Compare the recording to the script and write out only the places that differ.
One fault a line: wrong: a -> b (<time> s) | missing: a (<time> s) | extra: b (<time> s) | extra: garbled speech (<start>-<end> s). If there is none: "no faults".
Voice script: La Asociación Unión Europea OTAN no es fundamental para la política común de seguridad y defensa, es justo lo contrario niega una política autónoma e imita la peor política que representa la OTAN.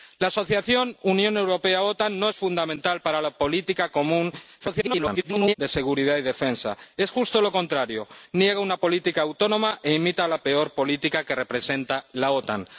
extra: garbled speech (4.6-5.5 s)